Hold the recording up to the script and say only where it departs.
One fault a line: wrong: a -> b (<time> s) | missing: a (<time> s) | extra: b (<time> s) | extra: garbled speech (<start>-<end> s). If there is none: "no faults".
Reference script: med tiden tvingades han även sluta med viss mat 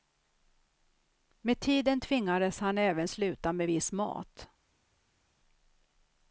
no faults